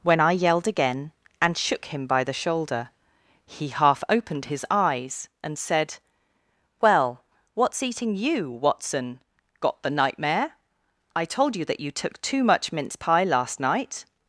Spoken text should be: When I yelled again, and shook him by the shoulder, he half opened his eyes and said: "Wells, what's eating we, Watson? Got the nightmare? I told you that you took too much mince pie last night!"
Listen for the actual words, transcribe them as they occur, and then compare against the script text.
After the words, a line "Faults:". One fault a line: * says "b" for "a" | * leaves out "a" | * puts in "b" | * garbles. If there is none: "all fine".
When I yelled again, and shook him by the shoulder, he half opened his eyes and said: "Well, what's eating you, Watson? Got the nightmare? I told you that you took too much mince pie last night!"
Faults:
* says "Well" for "Wells"
* says "you" for "we"